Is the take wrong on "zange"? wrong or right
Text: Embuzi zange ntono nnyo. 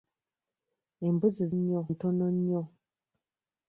wrong